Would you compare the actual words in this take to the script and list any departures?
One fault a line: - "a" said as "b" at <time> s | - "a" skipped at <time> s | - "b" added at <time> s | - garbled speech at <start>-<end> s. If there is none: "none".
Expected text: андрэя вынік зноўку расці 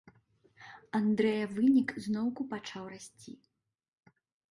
- "пачаў" added at 2.5 s